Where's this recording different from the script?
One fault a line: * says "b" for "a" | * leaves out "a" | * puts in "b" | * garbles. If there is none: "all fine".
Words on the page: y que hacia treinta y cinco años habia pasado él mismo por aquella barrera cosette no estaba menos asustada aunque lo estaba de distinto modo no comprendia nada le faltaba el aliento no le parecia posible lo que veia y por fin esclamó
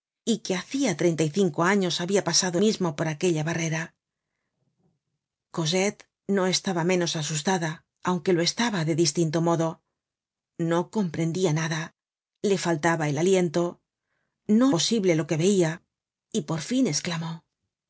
* leaves out "él"
* leaves out "le parecia"